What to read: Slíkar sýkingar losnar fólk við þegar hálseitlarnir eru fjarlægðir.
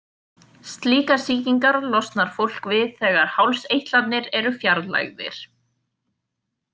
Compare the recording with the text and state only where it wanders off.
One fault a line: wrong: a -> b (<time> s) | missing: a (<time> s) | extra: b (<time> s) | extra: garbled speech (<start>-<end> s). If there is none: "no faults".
no faults